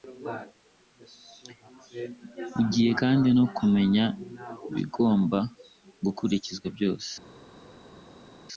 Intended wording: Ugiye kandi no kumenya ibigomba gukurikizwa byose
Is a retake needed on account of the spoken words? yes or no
no